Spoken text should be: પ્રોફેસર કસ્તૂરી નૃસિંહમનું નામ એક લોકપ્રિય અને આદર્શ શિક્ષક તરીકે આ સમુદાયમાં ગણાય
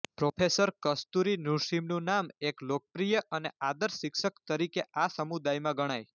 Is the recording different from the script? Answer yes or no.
no